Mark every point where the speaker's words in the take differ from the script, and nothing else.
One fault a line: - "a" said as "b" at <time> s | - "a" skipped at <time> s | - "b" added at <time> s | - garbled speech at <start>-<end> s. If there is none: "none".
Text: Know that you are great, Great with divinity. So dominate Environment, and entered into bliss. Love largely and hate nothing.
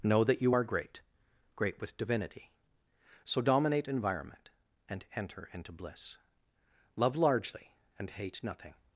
- "entered" said as "enter" at 5.1 s